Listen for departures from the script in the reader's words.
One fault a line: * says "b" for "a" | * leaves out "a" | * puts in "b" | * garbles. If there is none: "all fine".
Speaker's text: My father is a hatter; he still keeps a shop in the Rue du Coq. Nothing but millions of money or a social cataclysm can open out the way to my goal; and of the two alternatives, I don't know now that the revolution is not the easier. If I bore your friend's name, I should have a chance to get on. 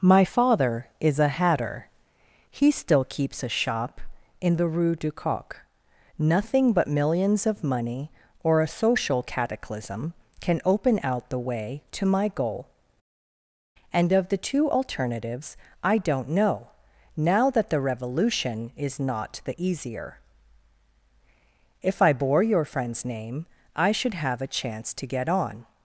all fine